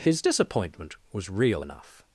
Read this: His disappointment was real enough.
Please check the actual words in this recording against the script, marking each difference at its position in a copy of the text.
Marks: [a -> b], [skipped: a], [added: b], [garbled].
His disappointment was real enough.